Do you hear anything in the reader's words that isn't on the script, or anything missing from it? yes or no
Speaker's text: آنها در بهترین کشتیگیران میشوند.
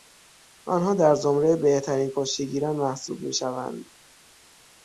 yes